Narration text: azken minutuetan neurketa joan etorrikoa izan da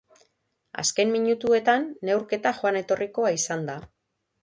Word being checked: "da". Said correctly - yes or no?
yes